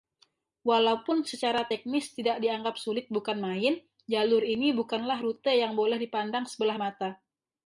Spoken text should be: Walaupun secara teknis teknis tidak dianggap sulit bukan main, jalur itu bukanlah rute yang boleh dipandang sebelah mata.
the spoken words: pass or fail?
fail